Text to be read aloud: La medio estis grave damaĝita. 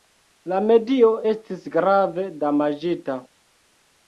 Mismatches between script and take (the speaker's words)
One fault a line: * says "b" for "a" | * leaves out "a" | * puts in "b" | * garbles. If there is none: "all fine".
all fine